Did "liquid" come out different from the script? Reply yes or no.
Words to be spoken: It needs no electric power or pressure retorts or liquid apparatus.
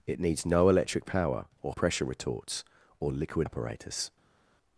no